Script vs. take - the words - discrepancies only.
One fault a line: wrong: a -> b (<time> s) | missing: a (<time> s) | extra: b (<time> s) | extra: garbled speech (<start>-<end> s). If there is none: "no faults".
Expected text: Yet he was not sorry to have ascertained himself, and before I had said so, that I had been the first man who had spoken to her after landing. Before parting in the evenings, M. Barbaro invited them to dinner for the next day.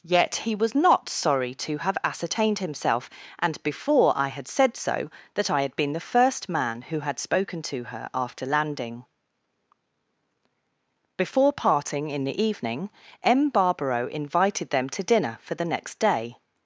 wrong: evenings -> evening (12.4 s)